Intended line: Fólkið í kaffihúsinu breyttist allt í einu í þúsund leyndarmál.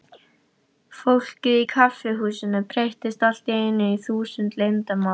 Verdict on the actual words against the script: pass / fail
pass